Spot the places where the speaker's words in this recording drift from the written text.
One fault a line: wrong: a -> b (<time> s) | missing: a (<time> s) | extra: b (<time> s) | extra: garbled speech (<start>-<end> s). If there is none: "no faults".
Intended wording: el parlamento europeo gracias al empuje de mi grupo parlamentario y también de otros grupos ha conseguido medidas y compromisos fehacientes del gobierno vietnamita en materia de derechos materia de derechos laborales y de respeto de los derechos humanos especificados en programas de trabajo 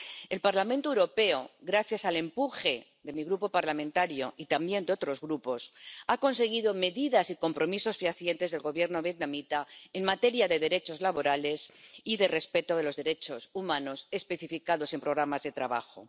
missing: materia de derechos (11.0 s)